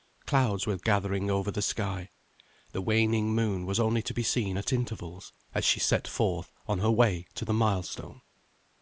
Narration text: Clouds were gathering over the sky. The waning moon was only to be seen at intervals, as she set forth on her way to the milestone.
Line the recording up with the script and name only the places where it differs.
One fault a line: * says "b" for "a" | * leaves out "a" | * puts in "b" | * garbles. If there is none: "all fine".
all fine